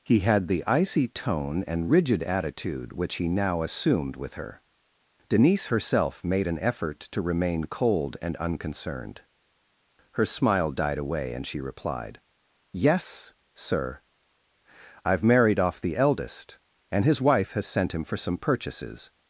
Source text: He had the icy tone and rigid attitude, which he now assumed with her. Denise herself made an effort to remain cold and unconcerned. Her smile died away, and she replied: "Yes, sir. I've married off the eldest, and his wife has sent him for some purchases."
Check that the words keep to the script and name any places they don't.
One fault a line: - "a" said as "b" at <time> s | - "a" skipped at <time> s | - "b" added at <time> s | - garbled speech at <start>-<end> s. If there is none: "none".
none